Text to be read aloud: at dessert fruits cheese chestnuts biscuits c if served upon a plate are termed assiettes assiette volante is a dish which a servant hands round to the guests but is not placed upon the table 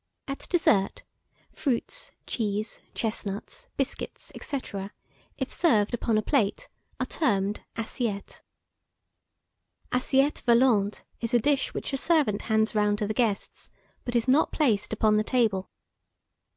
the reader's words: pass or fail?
pass